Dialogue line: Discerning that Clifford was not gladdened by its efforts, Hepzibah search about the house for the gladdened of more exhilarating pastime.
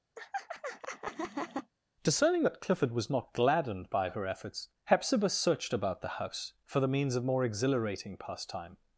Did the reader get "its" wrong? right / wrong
wrong